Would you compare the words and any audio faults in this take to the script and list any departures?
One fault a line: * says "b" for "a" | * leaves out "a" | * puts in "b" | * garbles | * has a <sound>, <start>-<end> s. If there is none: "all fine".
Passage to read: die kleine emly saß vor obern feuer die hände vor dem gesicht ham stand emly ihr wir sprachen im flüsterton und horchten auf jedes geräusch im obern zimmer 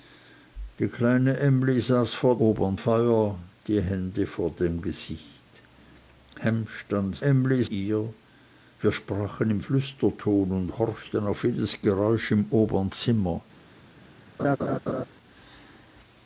* has a laugh, 14.4-15.1 s